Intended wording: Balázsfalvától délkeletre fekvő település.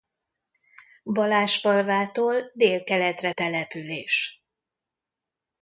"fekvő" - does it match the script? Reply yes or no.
no